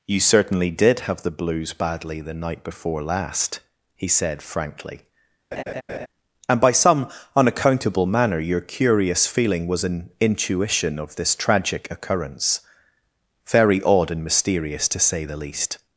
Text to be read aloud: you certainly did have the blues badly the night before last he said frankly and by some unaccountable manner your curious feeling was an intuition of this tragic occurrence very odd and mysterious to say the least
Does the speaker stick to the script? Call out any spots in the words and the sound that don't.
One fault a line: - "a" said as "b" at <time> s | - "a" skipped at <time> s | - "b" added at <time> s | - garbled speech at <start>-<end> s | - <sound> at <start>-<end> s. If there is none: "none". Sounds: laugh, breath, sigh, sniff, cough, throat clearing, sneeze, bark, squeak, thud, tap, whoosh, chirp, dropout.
- laugh at 5.5-6.1 s